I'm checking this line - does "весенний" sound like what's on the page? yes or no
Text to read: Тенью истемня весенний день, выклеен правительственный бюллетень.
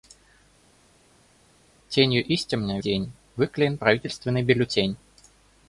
no